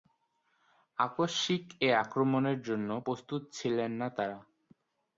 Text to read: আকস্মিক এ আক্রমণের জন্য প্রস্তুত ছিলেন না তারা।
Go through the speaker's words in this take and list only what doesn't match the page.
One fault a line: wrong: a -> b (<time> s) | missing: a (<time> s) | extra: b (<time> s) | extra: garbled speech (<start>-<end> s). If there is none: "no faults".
no faults